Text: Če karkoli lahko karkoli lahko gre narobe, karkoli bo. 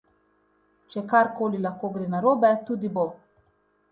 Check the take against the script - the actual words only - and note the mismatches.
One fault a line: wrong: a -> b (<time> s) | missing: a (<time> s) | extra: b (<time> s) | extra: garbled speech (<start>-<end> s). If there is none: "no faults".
missing: karkoli lahko (1.9 s)
wrong: karkoli -> tudi (2.7 s)